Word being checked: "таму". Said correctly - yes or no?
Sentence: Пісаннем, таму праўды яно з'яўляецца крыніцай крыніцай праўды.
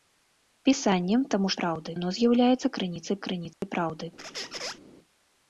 yes